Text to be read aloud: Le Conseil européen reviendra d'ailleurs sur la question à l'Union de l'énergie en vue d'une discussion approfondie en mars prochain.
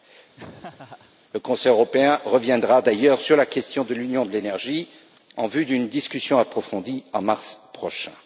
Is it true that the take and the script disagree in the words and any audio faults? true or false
true